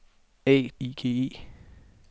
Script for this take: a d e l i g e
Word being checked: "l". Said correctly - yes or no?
no